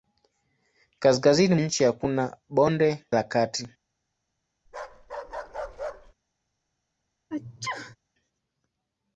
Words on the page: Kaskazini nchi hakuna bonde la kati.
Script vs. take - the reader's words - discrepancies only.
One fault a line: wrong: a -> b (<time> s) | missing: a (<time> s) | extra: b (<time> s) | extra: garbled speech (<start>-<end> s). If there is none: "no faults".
no faults